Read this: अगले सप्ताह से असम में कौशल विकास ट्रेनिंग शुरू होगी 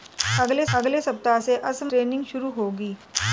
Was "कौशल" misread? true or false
true